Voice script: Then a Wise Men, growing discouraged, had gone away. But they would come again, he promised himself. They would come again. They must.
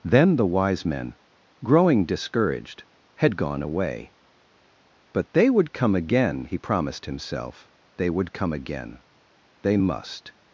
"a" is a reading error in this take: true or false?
true